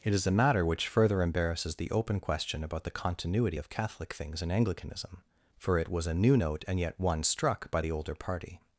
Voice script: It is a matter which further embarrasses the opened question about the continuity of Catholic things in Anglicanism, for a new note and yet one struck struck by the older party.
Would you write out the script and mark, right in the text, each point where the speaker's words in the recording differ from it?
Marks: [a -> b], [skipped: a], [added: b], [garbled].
It is a matter which further embarrasses the [opened -> open] question about the continuity of Catholic things in Anglicanism, for [added: it was] a new note and yet one struck [skipped: struck] by the older party.